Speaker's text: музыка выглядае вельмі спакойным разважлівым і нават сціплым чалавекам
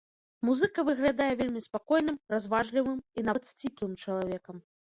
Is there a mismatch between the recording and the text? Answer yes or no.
no